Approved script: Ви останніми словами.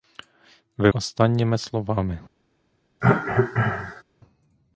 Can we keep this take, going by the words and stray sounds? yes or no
no